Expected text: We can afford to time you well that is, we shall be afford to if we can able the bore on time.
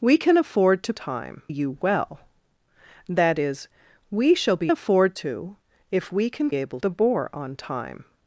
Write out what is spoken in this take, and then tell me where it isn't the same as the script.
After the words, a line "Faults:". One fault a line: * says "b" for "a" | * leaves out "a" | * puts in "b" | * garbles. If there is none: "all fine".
We can afford to time you well that is, we shall be afford to if we can able the bore on time.
Faults:
all fine